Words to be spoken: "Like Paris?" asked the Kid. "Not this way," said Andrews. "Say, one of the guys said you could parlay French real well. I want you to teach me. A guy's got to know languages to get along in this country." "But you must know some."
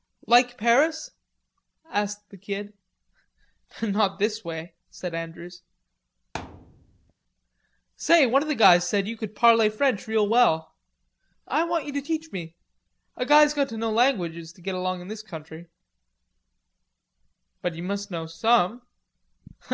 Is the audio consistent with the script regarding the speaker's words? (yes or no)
yes